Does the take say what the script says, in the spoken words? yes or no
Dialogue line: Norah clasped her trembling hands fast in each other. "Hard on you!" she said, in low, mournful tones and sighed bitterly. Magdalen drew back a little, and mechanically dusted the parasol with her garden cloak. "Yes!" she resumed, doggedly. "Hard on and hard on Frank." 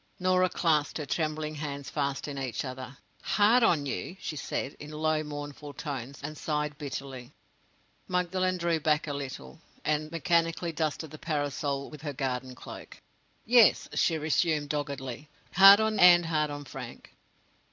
yes